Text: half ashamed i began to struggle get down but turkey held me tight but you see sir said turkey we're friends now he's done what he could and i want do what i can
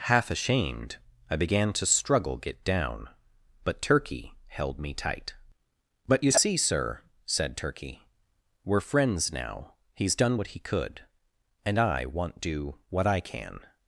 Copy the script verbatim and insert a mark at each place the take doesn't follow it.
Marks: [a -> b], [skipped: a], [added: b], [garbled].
half ashamed i began to struggle get down but turkey held me tight but you see sir said turkey we're friends now he's done what he could and i want do what i can